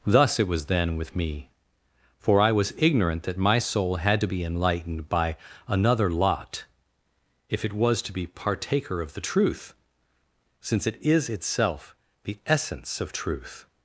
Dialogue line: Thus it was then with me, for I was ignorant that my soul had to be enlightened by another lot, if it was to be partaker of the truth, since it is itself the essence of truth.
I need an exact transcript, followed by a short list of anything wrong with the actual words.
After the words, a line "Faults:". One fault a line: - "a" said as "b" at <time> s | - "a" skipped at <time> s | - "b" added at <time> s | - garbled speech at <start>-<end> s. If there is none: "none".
Thus it was then with me, for I was ignorant that my soul had to be enlightened by another lot, if it was to be partaker of the truth, since it is itself the essence of truth.
Faults:
none